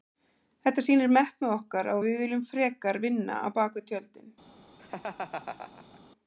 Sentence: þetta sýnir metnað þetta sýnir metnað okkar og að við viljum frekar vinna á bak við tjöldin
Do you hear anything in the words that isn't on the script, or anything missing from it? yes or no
yes